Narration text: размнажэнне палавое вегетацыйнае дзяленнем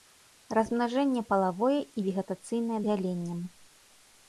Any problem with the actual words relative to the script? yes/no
yes